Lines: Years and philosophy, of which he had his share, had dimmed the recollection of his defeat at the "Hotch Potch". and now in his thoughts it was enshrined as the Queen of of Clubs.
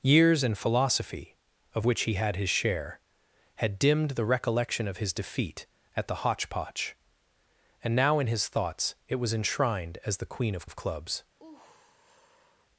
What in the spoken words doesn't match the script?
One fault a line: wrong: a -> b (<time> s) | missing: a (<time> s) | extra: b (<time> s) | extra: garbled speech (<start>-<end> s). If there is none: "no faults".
no faults